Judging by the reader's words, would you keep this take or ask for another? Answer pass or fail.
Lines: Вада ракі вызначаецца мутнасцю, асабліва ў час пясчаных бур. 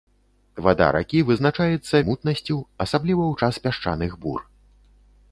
pass